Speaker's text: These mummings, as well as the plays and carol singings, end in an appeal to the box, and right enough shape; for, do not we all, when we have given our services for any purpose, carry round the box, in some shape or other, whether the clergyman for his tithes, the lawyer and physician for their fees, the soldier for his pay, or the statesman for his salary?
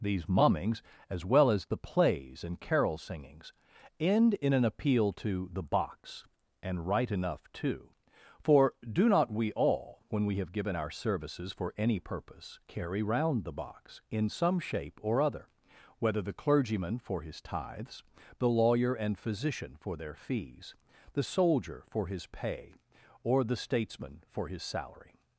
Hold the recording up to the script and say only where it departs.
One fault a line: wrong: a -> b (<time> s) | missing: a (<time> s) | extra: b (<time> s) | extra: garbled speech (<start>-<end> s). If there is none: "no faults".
wrong: shape -> too (7.5 s)